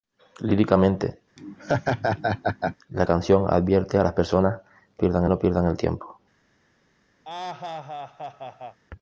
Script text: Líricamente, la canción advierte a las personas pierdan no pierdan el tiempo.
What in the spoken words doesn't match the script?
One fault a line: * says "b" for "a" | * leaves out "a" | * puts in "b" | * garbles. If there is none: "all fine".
all fine